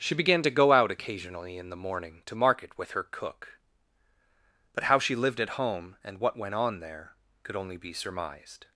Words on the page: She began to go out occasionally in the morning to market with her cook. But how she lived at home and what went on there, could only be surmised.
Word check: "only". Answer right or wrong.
right